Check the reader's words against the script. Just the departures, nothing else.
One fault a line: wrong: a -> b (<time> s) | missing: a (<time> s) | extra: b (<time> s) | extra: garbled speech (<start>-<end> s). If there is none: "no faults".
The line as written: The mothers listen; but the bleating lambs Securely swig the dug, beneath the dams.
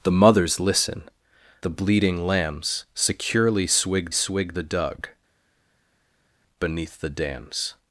missing: but (1.0 s)
extra: swig (4.1 s)